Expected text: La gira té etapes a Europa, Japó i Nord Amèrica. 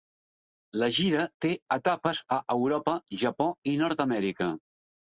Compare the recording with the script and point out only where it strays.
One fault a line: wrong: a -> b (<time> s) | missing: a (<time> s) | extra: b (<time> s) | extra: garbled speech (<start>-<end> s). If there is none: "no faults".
no faults